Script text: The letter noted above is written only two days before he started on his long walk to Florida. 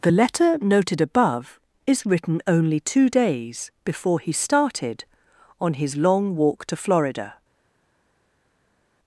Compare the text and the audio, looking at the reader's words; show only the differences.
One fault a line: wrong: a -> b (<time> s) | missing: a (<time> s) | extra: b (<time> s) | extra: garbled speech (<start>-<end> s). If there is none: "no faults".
no faults